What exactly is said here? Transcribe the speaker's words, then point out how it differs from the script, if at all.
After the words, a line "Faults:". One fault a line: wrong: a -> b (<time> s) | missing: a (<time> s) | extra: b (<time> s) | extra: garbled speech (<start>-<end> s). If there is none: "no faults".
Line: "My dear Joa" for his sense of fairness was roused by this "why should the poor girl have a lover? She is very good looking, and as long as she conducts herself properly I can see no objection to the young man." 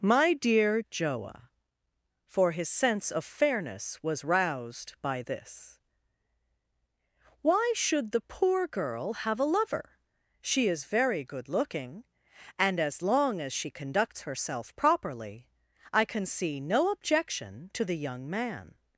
"My dear Joa" for his sense of fairness was roused by this "why should the poor girl have a lover? She is very good looking, and as long as she conducts herself properly I can see no objection to the young man."
Faults:
no faults